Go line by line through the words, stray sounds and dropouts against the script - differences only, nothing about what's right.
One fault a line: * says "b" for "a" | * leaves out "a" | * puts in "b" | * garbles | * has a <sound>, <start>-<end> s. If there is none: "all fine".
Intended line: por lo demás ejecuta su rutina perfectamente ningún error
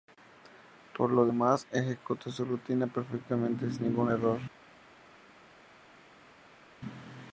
* puts in "sin"